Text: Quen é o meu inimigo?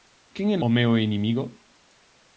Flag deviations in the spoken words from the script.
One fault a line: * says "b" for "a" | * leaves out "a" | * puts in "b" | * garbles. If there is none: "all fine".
all fine